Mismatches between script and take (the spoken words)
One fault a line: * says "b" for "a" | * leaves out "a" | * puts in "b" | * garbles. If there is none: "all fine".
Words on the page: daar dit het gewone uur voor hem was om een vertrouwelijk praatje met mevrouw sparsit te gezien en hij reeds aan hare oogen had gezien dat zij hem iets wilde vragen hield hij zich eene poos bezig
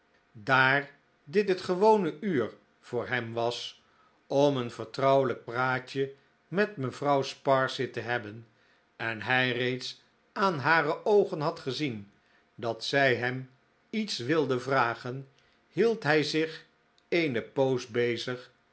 * says "hebben" for "gezien"